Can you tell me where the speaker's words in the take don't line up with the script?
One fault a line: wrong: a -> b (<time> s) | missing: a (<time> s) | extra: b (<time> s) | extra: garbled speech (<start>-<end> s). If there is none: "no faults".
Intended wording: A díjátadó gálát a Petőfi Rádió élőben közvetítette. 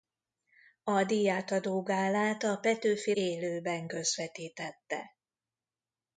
missing: Rádió (3.1 s)